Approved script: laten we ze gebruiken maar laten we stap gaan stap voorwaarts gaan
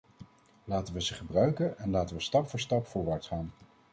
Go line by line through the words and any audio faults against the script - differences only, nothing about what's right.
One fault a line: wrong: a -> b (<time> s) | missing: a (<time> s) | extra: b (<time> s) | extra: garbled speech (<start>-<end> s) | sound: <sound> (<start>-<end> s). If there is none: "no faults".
wrong: maar -> en (1.8 s)
wrong: gaan -> voor (2.5 s)